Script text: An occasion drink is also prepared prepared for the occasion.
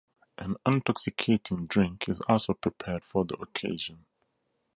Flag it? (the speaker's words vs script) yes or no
yes